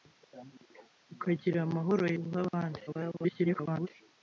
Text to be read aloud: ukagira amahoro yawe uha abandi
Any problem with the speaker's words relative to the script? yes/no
yes